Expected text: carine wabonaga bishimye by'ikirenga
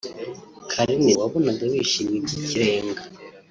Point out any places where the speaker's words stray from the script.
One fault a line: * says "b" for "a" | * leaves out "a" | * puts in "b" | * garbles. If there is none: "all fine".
all fine